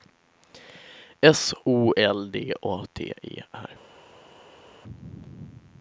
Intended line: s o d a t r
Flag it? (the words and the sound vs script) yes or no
yes